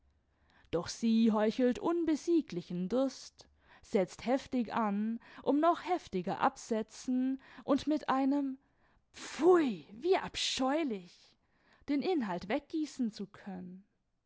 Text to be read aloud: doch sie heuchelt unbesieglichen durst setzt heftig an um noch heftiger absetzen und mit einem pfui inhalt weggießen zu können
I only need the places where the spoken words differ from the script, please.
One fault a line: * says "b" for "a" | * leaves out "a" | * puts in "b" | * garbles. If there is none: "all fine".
* puts in "wie abscheulich den"